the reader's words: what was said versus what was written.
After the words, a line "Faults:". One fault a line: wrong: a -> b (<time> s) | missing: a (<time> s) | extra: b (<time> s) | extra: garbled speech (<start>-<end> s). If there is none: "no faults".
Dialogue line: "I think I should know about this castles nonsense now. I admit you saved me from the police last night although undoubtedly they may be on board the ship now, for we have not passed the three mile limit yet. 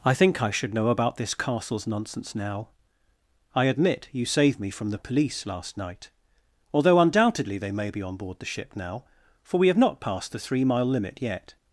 "I think I should know about this castles nonsense now. I admit you saved me from the police last night although undoubtedly they may be on board the ship now, for we have not passed the three mile limit yet.
Faults:
no faults